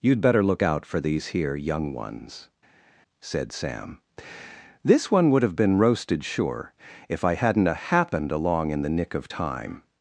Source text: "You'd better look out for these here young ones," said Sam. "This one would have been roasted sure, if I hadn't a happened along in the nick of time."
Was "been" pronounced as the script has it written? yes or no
yes